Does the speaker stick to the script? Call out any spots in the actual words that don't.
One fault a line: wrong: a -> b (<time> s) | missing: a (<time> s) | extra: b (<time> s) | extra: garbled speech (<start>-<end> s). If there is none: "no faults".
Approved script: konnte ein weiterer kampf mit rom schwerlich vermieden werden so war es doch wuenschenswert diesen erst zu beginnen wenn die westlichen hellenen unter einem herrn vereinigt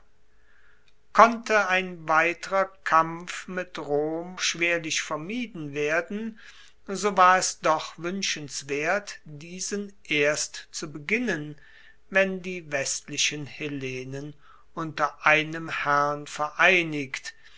no faults